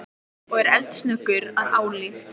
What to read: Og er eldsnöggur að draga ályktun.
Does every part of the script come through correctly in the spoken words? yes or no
no